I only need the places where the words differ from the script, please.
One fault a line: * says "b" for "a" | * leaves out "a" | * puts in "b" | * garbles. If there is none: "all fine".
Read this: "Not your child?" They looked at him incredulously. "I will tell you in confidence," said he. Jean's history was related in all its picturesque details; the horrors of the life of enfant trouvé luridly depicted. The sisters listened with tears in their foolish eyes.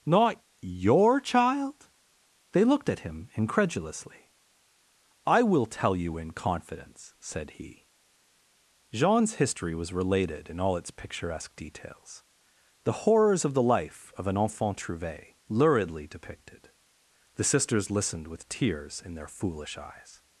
* puts in "an"